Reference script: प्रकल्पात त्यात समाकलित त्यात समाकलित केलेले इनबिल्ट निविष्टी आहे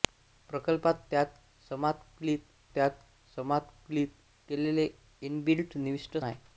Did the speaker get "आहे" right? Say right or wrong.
right